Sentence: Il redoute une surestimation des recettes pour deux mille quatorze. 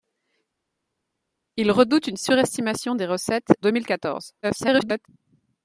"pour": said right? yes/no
no